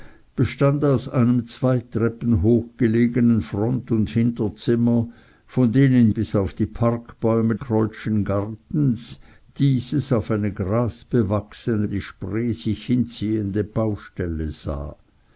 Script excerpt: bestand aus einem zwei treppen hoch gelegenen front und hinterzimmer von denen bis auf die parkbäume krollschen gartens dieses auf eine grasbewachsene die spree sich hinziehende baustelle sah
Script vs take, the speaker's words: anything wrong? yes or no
no